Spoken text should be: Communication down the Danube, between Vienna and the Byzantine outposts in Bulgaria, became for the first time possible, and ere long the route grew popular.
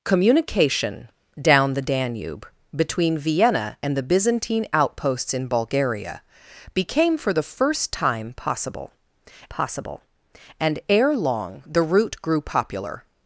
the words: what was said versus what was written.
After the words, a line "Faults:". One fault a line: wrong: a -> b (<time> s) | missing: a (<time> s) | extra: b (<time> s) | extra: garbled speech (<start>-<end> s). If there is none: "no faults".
Communication down the Danube, between Vienna and the Byzantine outposts in Bulgaria, became for the first time possible possible, and ere long the route grew popular.
Faults:
extra: possible (9.5 s)